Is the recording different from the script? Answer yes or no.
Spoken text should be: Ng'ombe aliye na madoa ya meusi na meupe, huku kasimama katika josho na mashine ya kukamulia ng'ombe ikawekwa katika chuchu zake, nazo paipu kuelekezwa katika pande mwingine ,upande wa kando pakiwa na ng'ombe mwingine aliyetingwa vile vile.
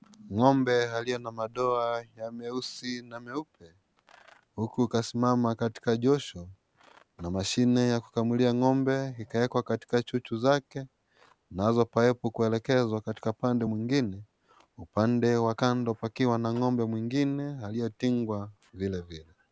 no